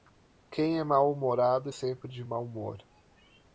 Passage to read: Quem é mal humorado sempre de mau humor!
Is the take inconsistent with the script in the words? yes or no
no